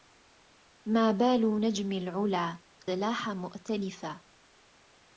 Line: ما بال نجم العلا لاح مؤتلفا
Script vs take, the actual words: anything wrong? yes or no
no